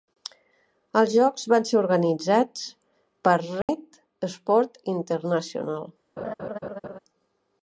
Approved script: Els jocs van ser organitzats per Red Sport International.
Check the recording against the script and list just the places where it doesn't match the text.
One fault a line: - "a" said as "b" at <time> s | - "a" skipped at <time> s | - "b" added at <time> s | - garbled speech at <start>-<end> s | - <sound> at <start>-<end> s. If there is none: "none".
- dropout at 3.6-3.7 s
- laugh at 6.2-7.0 s